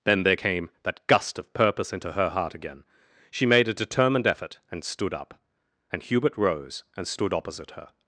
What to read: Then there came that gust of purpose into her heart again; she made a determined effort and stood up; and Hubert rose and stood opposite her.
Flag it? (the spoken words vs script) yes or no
no